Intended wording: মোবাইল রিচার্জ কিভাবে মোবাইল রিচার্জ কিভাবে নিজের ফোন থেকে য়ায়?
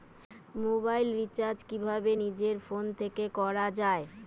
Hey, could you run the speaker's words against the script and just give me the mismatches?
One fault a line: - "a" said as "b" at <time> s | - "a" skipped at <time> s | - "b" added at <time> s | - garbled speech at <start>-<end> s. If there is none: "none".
- "মোবাইল রিচার্জ কিভাবে" skipped at 2.1 s
- "করা" added at 3.4 s